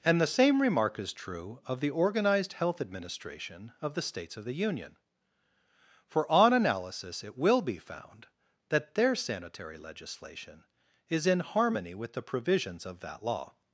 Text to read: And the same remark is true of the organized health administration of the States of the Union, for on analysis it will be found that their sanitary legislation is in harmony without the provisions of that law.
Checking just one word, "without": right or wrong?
wrong